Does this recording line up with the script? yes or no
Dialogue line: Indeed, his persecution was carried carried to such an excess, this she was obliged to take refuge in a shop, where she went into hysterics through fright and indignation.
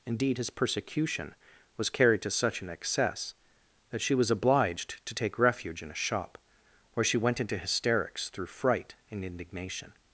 no